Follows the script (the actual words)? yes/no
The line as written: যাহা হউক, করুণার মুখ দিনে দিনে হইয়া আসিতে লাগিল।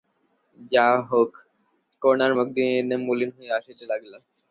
no